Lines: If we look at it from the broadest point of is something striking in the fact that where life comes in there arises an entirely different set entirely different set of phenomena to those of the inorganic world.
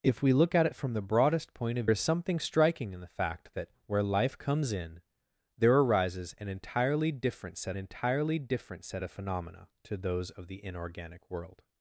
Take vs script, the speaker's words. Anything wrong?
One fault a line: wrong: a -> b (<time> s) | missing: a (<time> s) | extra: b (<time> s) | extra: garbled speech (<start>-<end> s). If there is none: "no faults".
no faults